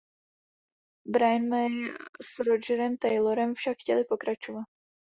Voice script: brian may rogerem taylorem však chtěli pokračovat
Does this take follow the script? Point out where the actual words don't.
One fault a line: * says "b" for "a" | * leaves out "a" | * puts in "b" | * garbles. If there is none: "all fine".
* puts in "s"